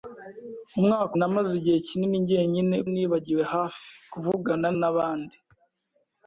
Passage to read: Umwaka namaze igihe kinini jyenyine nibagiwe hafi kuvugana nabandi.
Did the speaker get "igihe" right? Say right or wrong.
right